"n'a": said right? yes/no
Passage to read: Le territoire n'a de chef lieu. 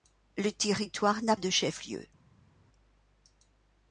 yes